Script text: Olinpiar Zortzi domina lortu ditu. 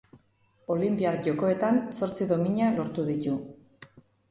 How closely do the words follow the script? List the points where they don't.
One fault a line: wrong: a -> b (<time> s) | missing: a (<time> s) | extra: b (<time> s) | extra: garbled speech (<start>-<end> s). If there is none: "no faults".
extra: Jokoetan (1.3 s)